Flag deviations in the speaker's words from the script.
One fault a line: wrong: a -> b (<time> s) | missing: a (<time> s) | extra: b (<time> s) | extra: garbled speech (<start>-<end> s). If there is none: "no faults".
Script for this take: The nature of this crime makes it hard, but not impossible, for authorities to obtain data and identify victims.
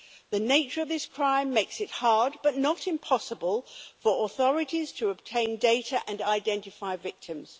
no faults